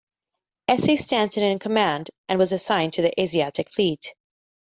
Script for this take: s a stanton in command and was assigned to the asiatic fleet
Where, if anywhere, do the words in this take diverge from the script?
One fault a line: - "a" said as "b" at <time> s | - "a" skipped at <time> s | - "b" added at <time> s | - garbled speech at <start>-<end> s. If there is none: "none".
none